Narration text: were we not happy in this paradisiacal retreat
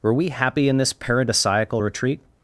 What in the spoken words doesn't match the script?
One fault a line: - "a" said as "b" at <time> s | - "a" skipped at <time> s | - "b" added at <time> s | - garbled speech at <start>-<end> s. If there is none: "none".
- "not" skipped at 0.3 s